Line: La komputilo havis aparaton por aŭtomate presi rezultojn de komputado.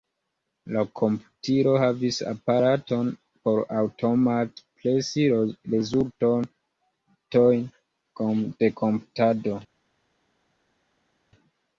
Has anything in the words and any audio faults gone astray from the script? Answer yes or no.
no